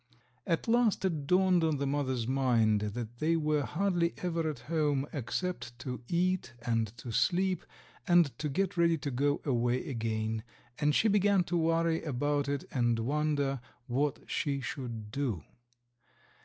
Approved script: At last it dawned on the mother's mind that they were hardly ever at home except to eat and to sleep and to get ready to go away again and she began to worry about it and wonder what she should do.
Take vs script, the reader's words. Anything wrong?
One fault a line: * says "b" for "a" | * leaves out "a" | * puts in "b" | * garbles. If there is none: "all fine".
all fine